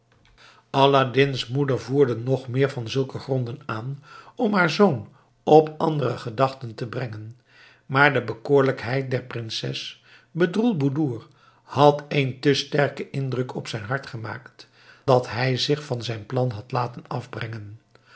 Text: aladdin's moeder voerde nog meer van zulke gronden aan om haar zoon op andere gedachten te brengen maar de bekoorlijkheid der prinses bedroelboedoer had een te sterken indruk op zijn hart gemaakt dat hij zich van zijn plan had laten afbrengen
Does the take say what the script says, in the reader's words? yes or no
yes